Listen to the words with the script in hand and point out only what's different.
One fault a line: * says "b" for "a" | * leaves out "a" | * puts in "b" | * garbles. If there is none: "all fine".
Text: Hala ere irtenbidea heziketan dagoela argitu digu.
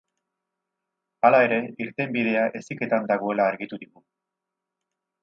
all fine